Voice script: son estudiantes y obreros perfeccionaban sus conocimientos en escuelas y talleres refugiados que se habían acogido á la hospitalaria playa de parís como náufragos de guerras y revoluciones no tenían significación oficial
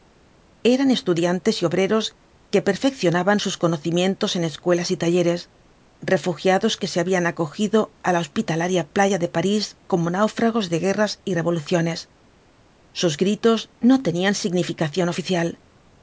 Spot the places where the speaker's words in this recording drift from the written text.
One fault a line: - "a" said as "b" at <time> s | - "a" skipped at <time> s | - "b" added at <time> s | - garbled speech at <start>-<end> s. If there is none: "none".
- "son" said as "eran" at 0.6 s
- "que" added at 2.5 s
- "sus gritos" added at 13.0 s